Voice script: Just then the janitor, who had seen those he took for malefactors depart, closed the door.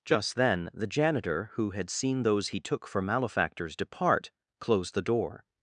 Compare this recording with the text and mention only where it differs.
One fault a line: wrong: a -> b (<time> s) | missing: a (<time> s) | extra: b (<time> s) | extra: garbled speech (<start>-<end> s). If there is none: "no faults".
no faults